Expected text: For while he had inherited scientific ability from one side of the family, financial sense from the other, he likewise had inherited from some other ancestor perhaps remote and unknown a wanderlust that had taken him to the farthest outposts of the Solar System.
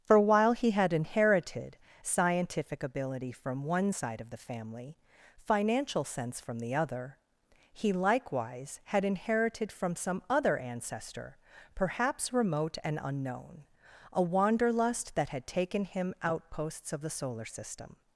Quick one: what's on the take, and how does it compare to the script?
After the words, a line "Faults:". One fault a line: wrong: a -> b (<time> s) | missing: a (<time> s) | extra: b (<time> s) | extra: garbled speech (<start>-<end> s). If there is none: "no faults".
For while he had inherited scientific ability from one side of the family, financial sense from the other, he likewise had inherited from some other ancestor perhaps remote and unknown a wanderlust that had taken him outposts of the Solar System.
Faults:
missing: to the farthest (16.1 s)